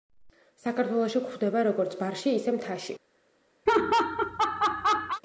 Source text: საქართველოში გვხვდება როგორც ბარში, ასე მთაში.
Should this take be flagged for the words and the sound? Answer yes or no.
yes